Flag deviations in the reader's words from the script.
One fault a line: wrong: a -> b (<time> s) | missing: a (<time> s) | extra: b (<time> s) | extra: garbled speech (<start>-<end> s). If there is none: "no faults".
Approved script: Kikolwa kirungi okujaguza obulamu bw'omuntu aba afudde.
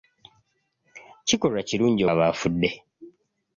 missing: okujaguza obulamu bw'omuntu (2.0 s)